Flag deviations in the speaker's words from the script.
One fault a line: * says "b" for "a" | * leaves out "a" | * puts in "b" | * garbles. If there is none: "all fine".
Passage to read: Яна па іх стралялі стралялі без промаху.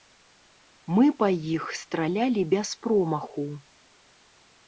* says "Мы" for "Яна"
* leaves out "стралялі"